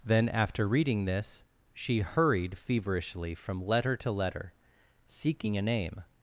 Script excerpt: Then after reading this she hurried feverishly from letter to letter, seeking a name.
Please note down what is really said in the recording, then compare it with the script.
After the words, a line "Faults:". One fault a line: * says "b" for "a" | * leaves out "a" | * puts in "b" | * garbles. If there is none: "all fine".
Then after reading this she hurried feverishly from letter to letter, seeking a name.
Faults:
all fine